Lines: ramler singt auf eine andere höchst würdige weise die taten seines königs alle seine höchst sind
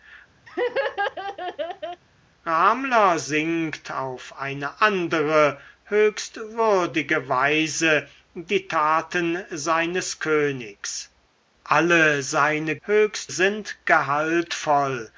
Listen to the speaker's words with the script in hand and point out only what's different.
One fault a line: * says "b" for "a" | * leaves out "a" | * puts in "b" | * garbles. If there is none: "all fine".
all fine